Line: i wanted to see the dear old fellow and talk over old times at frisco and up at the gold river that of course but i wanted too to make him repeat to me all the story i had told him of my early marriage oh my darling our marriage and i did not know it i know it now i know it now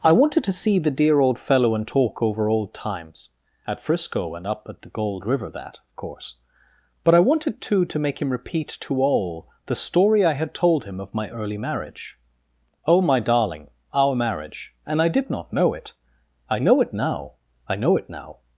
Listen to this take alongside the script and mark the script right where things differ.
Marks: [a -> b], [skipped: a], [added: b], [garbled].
i wanted to see the dear old fellow and talk over old times at frisco and up at the gold river that of course but i wanted too to make him repeat to [skipped: me] all the story i had told him of my early marriage oh my darling our marriage and i did not know it i know it now i know it now